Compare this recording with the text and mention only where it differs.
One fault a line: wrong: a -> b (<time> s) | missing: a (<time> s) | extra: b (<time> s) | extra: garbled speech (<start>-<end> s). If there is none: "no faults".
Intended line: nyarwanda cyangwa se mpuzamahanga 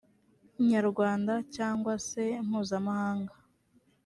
no faults